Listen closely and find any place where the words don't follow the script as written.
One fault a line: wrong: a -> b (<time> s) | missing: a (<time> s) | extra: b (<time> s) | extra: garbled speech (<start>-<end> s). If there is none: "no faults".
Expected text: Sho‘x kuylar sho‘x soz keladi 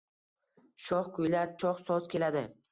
no faults